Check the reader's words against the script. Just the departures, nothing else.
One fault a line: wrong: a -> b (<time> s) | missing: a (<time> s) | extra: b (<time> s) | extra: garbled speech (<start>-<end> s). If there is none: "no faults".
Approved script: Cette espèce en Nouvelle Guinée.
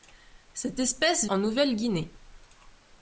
no faults